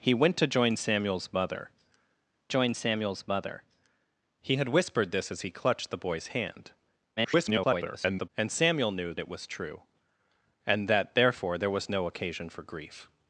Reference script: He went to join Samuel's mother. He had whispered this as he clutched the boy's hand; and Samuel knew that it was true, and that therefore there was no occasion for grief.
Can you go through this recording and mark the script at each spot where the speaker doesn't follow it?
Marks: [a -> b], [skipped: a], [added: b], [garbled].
He went to join Samuel's mother. [added: join Samuel's mother] He had whispered this as he clutched the boy's hand; [garbled] and Samuel knew [skipped: that] it was true, and that therefore there was no occasion for grief.